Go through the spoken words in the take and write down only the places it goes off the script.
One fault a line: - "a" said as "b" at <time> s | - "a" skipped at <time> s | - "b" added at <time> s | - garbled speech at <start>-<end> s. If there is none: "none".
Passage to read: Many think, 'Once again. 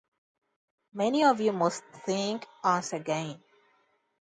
- "of you must" added at 1.2 s